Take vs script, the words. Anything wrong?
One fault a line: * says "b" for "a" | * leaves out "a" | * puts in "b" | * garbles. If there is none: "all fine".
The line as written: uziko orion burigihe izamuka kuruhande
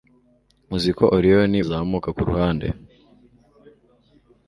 * leaves out "burigihe"